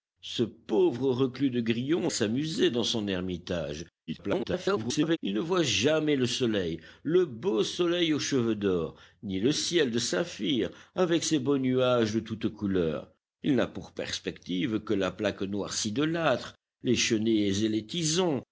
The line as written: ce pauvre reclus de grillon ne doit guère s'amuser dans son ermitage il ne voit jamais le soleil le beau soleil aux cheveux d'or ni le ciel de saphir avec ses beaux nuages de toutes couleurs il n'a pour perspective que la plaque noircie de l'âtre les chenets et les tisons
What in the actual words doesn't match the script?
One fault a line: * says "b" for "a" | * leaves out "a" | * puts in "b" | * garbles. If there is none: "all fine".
* leaves out "ne doit guère"
* garbles